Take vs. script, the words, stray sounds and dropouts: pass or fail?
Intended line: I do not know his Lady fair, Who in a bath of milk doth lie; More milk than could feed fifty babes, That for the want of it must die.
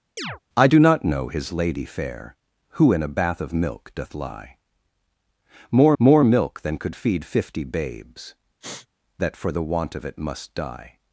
fail